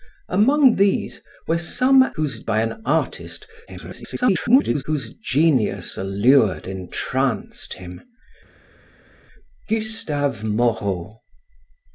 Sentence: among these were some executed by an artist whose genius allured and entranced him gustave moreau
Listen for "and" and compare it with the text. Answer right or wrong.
wrong